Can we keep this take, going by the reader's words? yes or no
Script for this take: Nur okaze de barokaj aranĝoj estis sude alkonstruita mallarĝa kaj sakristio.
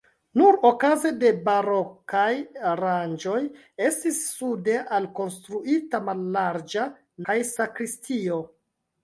yes